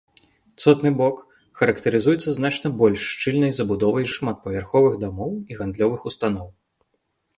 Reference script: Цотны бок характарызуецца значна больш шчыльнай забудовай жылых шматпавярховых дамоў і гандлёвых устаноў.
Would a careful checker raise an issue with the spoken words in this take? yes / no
yes